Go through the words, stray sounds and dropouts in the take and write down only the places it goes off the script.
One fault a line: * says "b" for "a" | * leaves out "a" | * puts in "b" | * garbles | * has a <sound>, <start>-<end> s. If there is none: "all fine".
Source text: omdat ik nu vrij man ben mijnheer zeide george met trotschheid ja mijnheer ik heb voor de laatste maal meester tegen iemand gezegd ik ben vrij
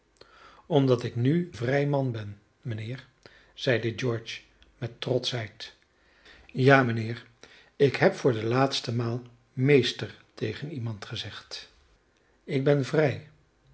all fine